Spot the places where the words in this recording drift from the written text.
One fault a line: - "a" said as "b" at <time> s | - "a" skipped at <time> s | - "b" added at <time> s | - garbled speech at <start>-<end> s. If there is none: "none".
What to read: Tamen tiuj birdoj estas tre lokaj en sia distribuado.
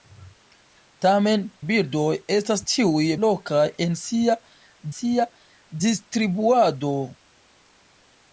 - "tiuj" skipped at 1.4 s
- "tre" said as "tiuj" at 2.7 s
- "sia" added at 4.9 s